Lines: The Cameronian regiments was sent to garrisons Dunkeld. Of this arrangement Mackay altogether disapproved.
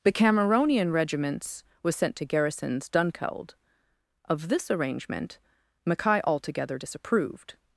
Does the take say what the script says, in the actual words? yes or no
yes